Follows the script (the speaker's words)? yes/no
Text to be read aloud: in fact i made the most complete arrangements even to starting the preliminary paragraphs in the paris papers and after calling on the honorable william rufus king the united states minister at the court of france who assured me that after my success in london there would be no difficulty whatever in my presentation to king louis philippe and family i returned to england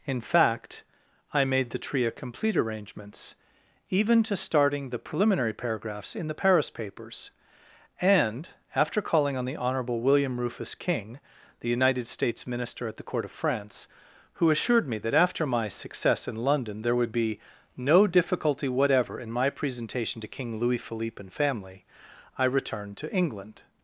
no